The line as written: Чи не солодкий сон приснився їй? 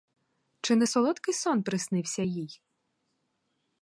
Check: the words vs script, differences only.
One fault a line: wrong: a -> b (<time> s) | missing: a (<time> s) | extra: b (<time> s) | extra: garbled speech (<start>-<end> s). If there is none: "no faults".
no faults